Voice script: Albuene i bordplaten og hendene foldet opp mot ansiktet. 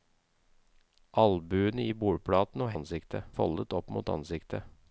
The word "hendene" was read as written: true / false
false